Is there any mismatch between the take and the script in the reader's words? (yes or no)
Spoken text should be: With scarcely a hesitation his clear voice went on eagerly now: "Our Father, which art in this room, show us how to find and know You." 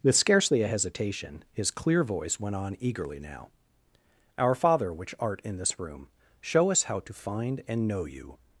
no